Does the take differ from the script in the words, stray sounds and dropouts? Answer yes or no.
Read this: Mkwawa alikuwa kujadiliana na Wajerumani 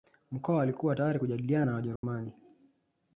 yes